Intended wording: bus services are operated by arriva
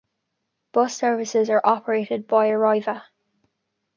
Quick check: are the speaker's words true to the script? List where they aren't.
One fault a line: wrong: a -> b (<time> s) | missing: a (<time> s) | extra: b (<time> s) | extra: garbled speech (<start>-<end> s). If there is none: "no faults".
no faults